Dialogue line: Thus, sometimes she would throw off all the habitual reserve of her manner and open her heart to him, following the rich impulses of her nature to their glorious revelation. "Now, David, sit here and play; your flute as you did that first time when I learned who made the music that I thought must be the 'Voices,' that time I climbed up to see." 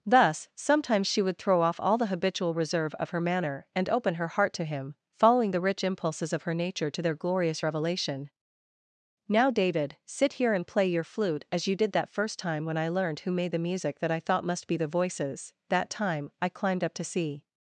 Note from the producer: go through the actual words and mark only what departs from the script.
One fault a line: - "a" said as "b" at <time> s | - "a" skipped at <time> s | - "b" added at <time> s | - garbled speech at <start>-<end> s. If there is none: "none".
none